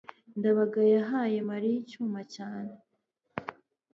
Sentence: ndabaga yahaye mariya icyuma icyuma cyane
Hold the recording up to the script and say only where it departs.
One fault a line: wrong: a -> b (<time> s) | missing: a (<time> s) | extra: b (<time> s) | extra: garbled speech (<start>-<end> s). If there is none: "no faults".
missing: icyuma (2.2 s)